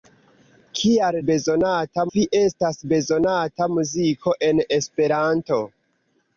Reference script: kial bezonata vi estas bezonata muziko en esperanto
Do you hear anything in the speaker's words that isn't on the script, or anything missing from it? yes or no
no